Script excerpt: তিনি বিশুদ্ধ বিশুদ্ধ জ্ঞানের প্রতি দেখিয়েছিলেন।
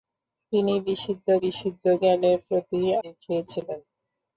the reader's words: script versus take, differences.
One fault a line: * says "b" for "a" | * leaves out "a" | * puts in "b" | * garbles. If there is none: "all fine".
all fine